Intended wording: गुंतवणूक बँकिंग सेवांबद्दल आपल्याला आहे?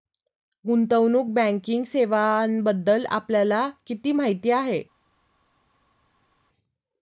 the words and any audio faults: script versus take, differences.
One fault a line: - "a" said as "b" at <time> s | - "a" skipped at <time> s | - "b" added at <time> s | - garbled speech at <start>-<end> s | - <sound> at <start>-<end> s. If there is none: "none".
- "किती माहिती" added at 3.9 s